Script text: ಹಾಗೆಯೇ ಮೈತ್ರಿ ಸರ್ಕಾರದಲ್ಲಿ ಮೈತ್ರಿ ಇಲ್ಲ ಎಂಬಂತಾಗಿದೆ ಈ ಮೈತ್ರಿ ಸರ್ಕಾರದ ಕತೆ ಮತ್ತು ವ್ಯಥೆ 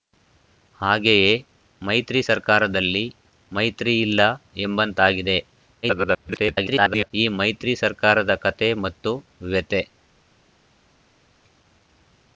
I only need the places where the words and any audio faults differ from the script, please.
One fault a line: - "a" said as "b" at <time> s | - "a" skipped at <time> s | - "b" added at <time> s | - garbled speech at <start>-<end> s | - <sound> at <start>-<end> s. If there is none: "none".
- garbled speech at 5.8-7.1 s